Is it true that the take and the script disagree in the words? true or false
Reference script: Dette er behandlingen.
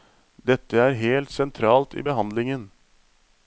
true